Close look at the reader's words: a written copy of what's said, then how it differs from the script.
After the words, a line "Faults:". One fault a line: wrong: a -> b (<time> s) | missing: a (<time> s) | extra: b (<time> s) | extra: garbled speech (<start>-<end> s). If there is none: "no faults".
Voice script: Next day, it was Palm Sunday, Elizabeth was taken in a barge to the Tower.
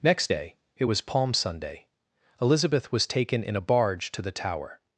Next day, it was Palm Sunday, Elizabeth was taken in a barge to the Tower.
Faults:
no faults